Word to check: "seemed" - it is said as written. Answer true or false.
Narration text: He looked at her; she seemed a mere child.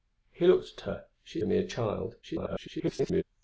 false